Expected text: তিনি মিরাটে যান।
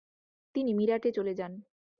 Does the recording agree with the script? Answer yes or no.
no